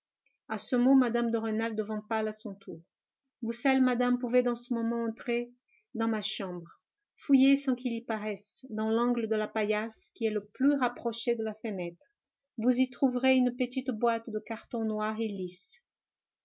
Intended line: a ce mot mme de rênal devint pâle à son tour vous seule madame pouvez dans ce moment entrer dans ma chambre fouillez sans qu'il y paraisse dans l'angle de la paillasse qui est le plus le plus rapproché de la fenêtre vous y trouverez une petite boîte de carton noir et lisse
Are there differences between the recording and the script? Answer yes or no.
yes